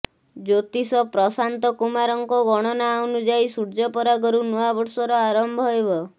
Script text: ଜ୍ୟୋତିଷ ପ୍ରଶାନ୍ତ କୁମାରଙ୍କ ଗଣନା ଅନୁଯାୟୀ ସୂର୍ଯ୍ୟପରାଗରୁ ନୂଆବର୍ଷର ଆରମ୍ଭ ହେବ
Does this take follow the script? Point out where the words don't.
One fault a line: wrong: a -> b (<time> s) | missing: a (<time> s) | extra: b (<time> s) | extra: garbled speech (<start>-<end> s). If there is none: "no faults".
no faults